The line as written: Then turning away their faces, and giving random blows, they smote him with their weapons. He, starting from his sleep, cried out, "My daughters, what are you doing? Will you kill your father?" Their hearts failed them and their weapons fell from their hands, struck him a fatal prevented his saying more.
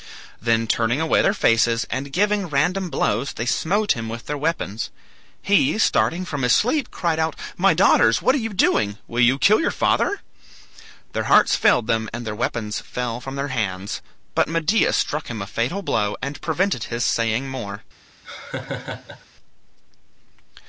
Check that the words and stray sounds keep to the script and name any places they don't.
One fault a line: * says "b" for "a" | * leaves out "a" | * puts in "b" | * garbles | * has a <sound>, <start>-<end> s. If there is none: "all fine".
* puts in "but Medea"
* puts in "blow and"
* has a laugh, 18.2-19.3 s